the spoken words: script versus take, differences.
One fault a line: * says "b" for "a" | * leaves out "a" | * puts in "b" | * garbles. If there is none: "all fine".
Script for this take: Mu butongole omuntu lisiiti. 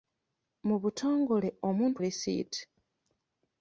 all fine